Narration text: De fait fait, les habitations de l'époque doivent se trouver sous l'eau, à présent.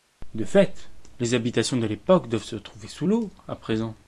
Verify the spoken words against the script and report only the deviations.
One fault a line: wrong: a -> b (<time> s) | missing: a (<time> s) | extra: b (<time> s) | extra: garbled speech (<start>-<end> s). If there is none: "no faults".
missing: fait (0.9 s)